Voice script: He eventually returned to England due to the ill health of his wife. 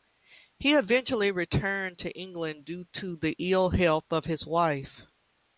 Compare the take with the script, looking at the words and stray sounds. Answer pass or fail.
pass